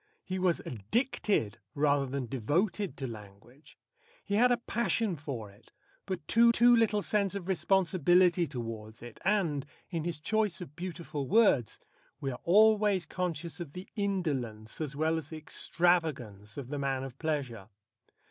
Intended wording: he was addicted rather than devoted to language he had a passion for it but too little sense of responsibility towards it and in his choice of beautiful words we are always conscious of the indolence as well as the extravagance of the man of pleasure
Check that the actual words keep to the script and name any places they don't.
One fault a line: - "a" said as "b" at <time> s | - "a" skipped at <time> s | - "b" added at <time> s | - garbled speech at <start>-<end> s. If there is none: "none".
- "too" added at 6.5 s